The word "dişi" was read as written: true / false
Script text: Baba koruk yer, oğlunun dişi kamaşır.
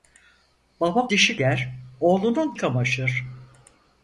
false